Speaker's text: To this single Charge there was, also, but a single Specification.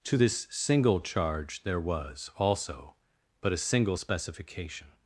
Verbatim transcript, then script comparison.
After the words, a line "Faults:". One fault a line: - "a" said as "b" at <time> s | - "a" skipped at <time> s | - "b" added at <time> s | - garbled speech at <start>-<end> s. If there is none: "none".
To this single Charge there was, also, but a single Specification.
Faults:
none